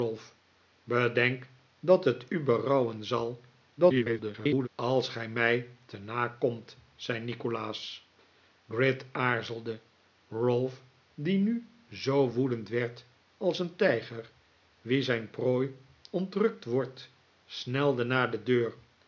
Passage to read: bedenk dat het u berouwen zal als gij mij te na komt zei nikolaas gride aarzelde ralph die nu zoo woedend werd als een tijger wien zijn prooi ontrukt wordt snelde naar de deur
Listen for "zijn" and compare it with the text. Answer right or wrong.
right